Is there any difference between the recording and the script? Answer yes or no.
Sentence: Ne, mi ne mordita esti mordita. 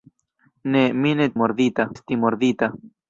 no